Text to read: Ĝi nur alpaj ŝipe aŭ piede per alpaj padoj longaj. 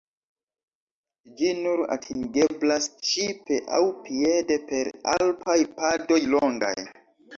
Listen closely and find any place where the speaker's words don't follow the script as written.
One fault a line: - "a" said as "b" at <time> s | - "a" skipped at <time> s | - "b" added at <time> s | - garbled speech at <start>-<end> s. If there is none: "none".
- "alpaj" said as "atingeblas" at 2.0 s